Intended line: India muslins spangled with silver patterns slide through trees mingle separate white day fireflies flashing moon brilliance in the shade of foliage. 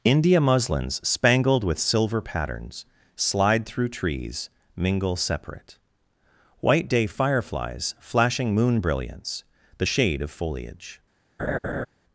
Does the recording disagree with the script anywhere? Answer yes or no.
yes